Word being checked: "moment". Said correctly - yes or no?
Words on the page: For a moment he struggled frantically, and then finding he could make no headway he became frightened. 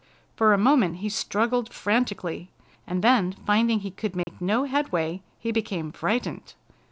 yes